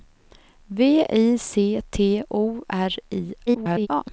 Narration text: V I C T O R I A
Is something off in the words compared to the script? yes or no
yes